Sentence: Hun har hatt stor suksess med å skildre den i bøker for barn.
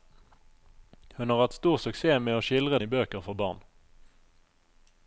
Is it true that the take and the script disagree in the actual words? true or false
true